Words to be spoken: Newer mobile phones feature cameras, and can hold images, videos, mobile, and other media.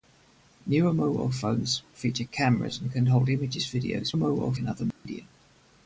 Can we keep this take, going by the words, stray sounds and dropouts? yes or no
no